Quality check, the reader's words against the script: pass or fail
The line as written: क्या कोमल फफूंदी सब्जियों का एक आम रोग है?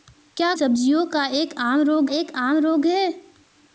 fail